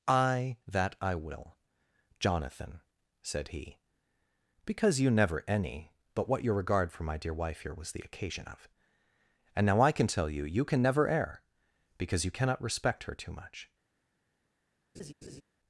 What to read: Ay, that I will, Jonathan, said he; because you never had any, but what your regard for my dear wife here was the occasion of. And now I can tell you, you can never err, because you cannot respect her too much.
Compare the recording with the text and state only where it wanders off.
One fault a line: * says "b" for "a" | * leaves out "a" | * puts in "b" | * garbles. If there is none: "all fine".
* leaves out "had"